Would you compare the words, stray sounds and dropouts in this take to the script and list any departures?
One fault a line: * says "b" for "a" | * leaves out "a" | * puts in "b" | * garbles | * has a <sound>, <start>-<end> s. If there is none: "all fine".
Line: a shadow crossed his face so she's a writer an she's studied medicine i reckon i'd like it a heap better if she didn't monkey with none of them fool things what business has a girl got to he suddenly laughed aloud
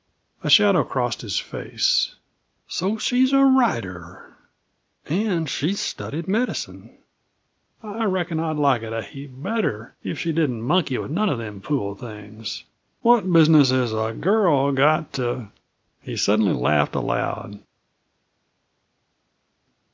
all fine